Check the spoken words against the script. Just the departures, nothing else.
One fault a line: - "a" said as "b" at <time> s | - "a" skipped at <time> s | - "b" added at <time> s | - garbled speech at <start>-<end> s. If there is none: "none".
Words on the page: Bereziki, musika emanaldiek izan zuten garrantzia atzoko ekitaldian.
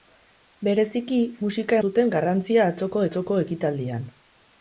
- "emanaldiek izan" skipped at 1.8 s
- "atzoko" added at 3.1 s